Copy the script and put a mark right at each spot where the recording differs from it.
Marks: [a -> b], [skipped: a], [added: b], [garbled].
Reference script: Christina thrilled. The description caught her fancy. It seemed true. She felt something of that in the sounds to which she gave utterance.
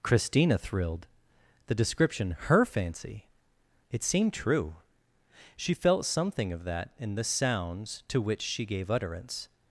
Christina thrilled. The description [skipped: caught] her fancy. It seemed true. She felt something of that in the sounds to which she gave utterance.